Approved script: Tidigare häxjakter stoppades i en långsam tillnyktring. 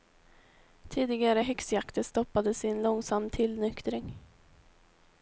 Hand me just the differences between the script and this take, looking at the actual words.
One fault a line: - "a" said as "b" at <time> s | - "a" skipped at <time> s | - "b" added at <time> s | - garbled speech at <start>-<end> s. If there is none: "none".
none